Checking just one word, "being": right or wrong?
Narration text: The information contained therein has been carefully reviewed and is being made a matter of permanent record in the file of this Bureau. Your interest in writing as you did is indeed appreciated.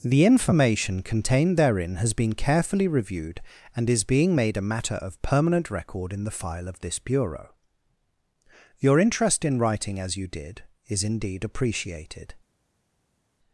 right